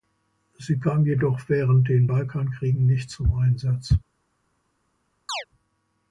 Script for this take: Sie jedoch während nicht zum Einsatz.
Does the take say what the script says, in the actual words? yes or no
no